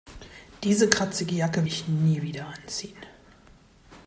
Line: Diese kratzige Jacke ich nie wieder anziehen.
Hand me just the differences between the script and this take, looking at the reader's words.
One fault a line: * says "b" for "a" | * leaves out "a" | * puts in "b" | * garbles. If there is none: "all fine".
all fine